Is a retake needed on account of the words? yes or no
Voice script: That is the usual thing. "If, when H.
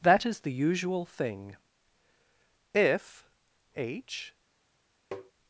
yes